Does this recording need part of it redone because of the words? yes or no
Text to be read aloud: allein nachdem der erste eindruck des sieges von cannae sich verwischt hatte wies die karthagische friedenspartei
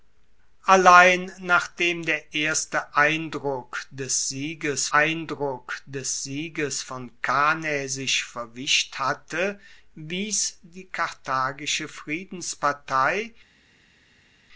yes